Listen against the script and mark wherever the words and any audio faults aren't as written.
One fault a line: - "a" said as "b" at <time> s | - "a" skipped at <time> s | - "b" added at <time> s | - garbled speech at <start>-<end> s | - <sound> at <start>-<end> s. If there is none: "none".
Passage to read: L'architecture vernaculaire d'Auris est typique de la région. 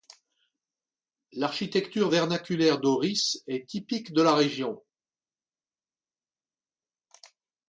none